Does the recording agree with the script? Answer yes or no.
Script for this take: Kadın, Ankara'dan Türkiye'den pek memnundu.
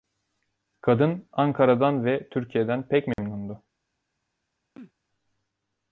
no